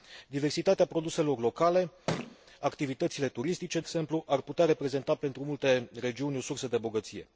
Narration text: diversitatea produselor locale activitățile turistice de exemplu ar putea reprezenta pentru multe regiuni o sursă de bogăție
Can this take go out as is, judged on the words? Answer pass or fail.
fail